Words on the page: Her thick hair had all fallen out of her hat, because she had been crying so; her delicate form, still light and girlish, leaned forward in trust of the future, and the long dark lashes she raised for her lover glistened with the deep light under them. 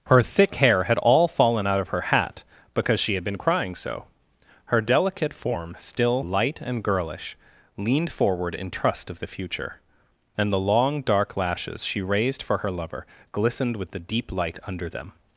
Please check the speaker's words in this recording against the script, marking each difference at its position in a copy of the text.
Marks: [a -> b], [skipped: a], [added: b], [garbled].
Her thick hair had all fallen out of her hat, because she had been crying so; her delicate form, still light and girlish, leaned forward in trust of the future, and the long dark lashes she raised for her lover glistened with the deep light under them.